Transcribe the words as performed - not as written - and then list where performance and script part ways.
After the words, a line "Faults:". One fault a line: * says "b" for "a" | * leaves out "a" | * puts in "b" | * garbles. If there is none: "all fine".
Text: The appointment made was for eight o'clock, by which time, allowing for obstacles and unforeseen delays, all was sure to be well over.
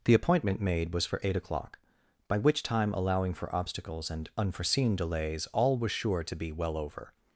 The appointment made was for eight o'clock, by which time, allowing for obstacles and unforeseen delays, all was sure to be well over.
Faults:
all fine